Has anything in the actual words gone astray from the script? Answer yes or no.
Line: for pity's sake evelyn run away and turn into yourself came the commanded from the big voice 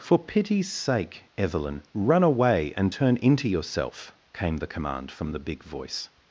yes